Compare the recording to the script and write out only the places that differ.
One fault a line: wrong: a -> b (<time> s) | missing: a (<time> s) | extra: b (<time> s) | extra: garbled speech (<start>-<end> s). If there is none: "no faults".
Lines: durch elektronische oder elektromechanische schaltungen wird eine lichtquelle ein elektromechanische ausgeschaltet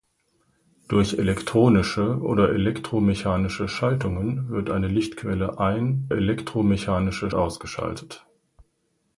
no faults